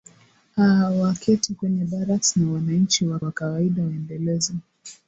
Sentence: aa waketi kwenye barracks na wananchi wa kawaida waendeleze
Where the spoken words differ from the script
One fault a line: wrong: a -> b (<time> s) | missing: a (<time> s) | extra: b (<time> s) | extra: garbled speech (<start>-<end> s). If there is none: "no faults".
extra: wa (3.2 s)